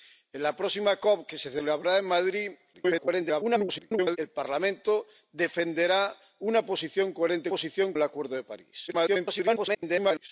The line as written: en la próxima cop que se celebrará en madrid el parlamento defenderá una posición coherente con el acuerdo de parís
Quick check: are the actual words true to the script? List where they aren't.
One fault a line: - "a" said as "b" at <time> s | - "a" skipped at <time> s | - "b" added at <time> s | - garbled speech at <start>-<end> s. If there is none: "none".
- garbled speech at 2.7-4.2 s
- "con" said as "posición" at 7.5 s
- garbled speech at 8.9-10.3 s